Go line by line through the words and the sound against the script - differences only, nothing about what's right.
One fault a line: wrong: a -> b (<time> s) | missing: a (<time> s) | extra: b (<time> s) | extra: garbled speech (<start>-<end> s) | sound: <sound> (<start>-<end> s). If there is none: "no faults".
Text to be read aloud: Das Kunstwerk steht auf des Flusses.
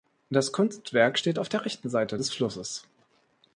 extra: der rechten Seite (1.5 s)